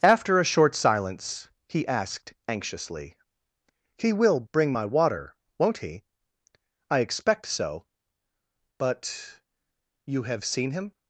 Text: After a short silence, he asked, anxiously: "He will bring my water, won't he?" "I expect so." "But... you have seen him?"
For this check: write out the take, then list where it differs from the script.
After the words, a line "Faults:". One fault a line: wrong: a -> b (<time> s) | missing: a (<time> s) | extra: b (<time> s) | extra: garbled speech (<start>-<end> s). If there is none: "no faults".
After a short silence, he asked, anxiously: "He will bring my water, won't he?" "I expect so." "But... you have seen him?"
Faults:
no faults